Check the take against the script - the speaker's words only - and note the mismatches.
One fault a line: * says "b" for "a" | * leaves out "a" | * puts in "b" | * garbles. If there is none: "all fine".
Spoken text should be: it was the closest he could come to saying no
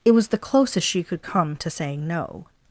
* says "she" for "he"